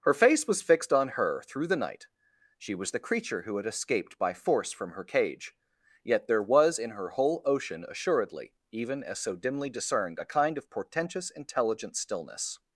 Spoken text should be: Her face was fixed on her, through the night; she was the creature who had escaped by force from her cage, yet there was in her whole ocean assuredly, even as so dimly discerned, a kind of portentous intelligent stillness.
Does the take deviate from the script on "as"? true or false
false